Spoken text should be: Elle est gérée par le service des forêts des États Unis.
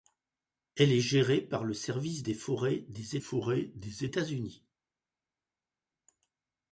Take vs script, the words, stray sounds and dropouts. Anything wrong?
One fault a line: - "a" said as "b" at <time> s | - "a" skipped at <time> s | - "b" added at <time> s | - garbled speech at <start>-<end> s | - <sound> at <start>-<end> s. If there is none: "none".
- "forêts des" added at 3.2 s